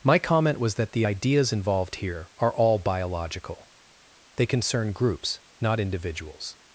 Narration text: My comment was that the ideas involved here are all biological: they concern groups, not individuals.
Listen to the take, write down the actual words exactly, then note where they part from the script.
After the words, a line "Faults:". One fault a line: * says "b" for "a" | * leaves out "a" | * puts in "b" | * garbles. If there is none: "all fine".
My comment was that the ideas involved here are all biological: they concern groups, not individuals.
Faults:
all fine